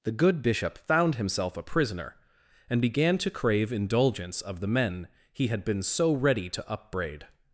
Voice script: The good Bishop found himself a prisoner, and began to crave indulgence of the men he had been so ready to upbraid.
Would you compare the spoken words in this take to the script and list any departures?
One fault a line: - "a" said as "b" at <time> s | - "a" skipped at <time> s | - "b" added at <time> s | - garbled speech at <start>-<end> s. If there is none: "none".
none